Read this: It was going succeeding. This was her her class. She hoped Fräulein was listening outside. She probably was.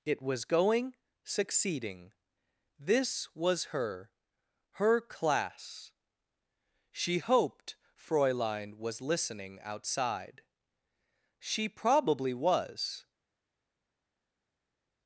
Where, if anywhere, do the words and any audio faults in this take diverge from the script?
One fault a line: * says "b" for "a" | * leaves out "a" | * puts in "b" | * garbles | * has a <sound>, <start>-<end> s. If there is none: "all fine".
all fine